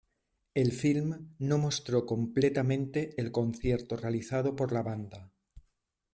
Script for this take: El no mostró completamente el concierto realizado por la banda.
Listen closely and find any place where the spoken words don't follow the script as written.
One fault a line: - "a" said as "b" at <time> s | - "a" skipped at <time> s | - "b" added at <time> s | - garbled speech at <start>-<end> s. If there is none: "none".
- "film" added at 0.7 s